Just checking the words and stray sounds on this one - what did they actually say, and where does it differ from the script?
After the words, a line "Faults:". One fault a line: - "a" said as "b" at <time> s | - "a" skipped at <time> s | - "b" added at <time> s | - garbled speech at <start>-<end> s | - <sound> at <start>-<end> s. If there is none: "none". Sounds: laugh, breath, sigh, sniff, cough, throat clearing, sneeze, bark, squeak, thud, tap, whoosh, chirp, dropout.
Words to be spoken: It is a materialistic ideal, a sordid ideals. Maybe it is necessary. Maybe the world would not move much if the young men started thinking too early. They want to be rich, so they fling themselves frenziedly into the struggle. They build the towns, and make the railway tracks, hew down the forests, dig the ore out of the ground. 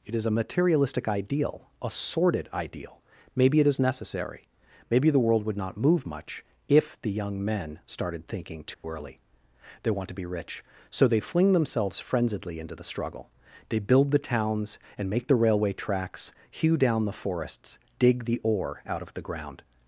It is a materialistic ideal, a sordid ideal. Maybe it is necessary. Maybe the world would not move much if the young men started thinking too early. They want to be rich, so they fling themselves frenziedly into the struggle. They build the towns, and make the railway tracks, hew down the forests, dig the ore out of the ground.
Faults:
- "ideals" said as "ideal" at 2.5 s
- dropout at 8.7-8.8 s